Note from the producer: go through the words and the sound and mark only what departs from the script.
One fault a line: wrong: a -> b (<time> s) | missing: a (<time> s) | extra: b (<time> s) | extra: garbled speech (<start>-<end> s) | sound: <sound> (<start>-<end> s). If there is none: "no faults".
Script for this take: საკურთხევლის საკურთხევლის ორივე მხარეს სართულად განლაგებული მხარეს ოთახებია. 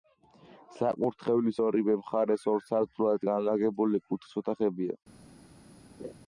missing: საკურთხევლის (1.6 s)
extra: ორ (2.5 s)
wrong: მხარეს -> კუთხის (4.1 s)
sound: laugh (6.0-6.1 s)